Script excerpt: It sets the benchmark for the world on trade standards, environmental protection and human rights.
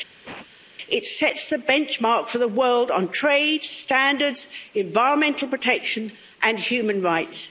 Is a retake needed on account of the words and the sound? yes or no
yes